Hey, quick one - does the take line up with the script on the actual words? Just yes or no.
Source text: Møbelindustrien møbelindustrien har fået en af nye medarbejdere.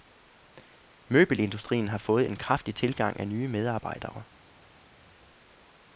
no